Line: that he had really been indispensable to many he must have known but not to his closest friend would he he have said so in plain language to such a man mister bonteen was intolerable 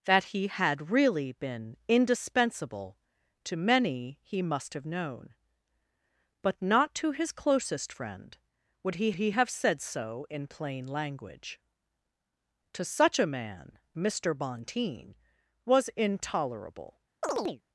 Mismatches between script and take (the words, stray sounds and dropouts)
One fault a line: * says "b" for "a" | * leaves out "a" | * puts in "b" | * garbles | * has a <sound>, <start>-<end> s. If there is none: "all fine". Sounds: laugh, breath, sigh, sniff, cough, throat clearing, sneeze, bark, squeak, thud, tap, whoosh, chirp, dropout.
* has a chirp, 17.2-17.6 s